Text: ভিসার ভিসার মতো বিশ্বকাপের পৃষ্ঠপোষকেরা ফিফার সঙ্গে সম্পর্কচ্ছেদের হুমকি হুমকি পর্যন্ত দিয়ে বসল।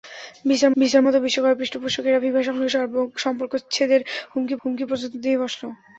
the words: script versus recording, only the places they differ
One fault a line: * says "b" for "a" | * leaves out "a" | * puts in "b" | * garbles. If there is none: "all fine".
all fine